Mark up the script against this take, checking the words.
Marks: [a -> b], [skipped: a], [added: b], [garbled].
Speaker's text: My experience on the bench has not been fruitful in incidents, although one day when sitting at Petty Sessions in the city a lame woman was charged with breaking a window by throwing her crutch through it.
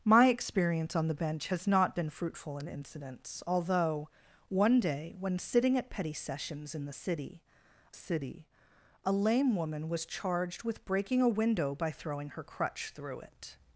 My experience on the bench has not been fruitful in incidents, although one day when sitting at Petty Sessions in the city [added: city] a lame woman was charged with breaking a window by throwing her crutch through it.